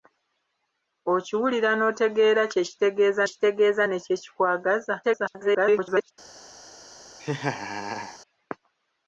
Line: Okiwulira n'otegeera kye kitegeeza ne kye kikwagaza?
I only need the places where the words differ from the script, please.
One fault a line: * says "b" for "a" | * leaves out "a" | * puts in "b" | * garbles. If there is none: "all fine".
* puts in "kitegeeza"
* garbles